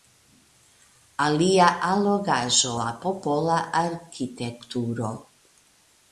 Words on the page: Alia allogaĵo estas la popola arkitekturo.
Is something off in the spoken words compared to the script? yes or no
yes